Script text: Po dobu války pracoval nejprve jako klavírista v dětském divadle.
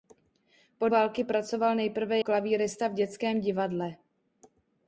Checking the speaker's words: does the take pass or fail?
fail